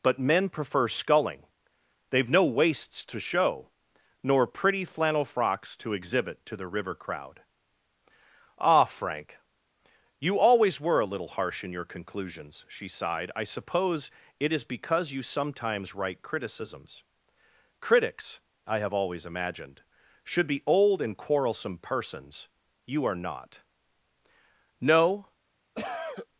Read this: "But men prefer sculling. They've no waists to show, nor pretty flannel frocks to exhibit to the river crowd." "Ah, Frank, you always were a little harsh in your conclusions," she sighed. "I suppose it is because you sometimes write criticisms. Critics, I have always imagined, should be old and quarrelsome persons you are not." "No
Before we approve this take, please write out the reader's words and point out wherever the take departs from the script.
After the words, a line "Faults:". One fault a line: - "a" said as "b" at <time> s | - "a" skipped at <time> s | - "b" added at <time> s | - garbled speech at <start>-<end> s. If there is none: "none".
"But men prefer sculling. They've no waists to show, nor pretty flannel frocks to exhibit to the river crowd." "Ah, Frank, you always were a little harsh in your conclusions," she sighed. "I suppose it is because you sometimes write criticisms. Critics, I have always imagined, should be old and quarrelsome persons you are not." "No
Faults:
none